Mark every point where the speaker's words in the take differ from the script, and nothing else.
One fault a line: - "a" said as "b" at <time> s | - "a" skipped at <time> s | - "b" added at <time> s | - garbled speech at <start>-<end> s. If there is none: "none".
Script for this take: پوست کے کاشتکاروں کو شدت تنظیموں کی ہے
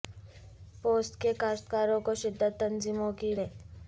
none